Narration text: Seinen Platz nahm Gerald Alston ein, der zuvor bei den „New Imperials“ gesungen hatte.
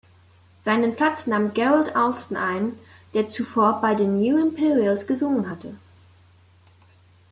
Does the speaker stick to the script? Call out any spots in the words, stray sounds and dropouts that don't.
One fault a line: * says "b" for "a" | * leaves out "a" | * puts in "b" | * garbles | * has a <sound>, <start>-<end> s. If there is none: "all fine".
all fine